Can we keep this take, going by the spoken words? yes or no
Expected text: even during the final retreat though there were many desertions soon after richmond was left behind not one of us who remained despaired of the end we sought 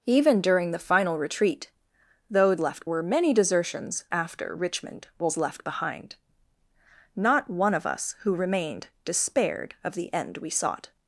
no